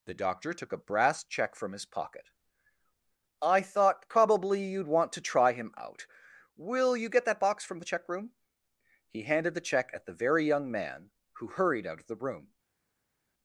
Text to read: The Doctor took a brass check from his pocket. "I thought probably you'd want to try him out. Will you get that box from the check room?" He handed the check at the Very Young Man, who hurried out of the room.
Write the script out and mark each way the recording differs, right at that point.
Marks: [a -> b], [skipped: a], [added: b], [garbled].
The Doctor took a brass check from his pocket. "I thought probably you'd want to try him out. Will you get that box from the check room?" He handed the check at the Very Young Man, who hurried out of the room.